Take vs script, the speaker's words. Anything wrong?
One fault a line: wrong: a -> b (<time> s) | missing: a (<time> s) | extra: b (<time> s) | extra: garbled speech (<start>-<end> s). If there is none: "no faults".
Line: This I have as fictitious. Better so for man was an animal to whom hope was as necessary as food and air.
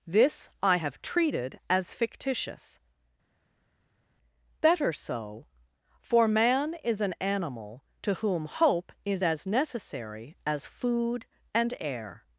extra: treated (1.0 s)
wrong: was -> is (6.8 s)
wrong: was -> is (9.0 s)